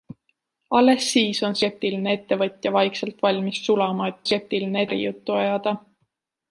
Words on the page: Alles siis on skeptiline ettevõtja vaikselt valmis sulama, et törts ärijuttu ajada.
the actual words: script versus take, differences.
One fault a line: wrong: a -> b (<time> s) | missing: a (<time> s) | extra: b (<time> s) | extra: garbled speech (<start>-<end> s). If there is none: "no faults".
wrong: törts -> skeptiline (4.3 s)